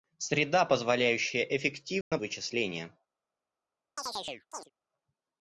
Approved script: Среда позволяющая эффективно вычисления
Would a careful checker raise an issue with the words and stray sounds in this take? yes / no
yes